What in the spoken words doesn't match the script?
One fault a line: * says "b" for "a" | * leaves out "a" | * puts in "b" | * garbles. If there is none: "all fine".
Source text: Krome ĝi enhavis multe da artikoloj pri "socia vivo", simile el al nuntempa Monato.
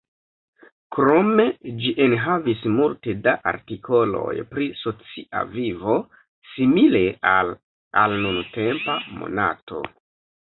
* says "al" for "el"